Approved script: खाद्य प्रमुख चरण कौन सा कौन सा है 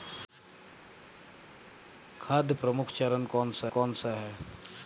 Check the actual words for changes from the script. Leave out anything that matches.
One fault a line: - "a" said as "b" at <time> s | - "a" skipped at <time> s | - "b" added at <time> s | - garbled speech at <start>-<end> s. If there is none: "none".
none